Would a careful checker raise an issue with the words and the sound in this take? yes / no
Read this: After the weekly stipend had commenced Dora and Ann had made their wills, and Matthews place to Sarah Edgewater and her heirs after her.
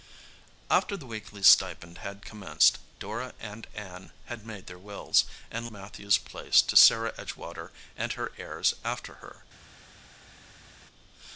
no